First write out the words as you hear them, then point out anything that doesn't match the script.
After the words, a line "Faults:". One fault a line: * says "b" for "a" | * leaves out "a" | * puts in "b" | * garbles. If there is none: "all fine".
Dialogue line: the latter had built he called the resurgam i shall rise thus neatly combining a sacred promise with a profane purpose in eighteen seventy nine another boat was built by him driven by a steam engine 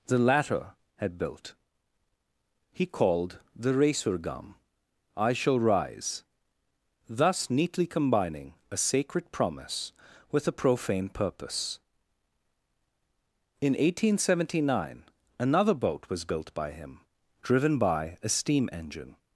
the latter had built he called the resurgam i shall rise thus neatly combining a sacred promise with a profane purpose in eighteen seventy nine another boat was built by him driven by a steam engine
Faults:
all fine